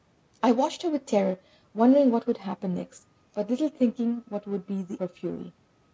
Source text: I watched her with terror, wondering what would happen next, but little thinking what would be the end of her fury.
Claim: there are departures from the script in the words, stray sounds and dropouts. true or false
true